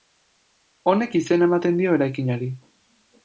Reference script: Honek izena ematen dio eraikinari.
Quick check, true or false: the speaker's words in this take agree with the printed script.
true